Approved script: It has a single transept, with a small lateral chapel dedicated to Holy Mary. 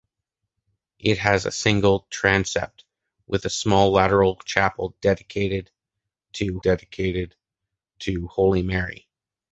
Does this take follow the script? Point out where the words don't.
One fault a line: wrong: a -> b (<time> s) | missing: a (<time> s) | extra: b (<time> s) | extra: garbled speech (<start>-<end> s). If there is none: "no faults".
extra: dedicated to (6.6 s)